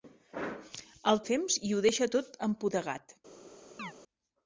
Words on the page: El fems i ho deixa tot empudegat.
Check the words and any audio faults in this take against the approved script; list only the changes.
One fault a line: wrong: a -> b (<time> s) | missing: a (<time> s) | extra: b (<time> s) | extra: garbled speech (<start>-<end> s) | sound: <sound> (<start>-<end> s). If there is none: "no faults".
sound: chirp (3.8-3.9 s)